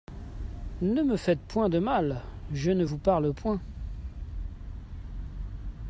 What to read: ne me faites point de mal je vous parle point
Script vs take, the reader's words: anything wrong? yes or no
yes